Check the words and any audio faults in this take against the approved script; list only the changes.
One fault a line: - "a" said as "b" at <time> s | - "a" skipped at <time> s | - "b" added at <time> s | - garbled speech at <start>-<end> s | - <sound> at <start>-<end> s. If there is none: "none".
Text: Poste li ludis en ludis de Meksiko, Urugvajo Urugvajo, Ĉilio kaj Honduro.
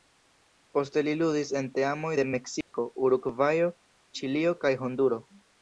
- "ludis" said as "teamoj" at 1.8 s
- dropout at 2.6-2.7 s
- "Urugvajo" skipped at 3.7 s